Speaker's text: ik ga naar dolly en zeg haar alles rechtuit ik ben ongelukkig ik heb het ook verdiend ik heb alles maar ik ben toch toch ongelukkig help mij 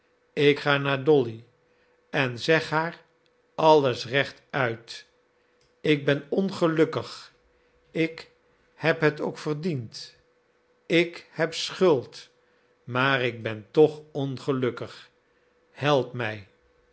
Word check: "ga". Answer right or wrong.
right